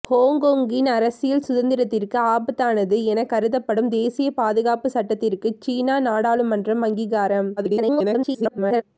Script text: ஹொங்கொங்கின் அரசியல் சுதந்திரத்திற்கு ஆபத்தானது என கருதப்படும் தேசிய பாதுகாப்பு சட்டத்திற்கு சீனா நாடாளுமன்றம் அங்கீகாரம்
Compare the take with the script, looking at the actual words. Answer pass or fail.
fail